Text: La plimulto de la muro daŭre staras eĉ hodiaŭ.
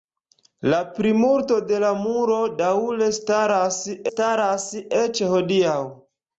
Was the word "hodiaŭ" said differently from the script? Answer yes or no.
no